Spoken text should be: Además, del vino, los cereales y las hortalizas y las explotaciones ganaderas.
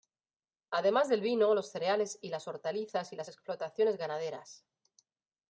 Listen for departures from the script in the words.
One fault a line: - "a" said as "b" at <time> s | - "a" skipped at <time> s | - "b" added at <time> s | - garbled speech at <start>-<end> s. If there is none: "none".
none